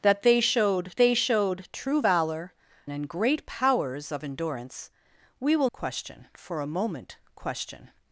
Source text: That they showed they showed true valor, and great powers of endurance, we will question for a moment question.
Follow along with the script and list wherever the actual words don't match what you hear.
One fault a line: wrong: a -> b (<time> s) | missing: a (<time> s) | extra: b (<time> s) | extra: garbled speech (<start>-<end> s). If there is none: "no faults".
no faults